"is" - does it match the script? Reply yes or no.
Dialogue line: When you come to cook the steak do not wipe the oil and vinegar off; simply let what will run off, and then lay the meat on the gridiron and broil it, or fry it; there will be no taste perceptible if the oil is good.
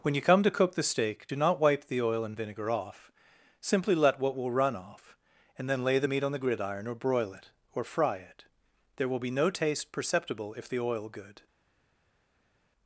no